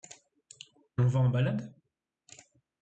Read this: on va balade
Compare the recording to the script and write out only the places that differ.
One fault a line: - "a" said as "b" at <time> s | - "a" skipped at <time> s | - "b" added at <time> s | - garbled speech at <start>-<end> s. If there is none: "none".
- "en" added at 1.2 s